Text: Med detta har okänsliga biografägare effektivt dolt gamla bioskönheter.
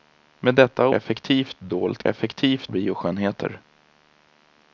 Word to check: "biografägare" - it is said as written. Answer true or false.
false